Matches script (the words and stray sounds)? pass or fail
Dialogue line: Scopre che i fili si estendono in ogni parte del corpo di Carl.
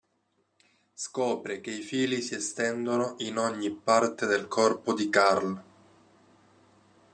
pass